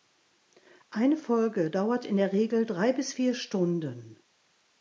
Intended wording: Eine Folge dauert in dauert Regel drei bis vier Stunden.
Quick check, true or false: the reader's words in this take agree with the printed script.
false